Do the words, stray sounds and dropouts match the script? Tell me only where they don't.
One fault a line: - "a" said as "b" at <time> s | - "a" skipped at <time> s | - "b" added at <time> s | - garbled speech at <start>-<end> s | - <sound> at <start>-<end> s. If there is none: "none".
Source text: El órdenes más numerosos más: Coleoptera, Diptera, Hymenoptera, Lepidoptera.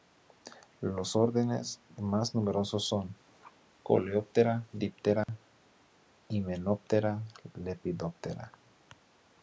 - "El" said as "Los" at 0.8 s
- "más" said as "son" at 2.9 s
- dropout at 5.2-5.3 s